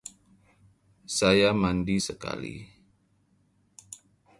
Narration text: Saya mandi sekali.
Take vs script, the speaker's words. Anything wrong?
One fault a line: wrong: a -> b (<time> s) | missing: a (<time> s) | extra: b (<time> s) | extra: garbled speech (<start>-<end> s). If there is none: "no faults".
no faults